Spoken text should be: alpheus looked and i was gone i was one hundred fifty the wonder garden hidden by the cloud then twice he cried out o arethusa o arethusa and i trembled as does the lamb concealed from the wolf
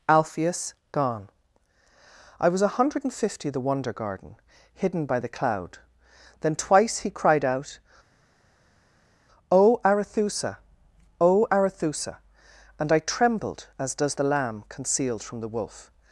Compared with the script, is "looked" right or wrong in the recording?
wrong